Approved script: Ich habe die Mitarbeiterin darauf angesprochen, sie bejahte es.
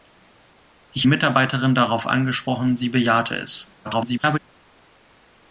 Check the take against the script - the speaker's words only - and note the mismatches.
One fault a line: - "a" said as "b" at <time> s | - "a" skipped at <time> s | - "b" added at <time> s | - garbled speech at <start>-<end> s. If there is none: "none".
- "habe die" skipped at 1.1 s
- garbled speech at 3.8-4.4 s